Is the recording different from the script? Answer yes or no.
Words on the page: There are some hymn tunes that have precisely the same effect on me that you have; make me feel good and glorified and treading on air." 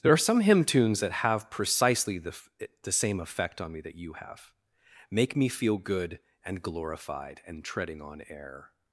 yes